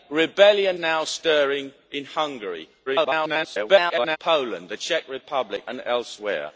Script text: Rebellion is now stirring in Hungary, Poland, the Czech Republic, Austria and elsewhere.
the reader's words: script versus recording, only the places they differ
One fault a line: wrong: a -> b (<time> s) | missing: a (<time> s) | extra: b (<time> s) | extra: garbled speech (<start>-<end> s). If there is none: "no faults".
missing: is (0.8 s)
extra: garbled speech (2.9-4.2 s)
missing: Austria (5.6 s)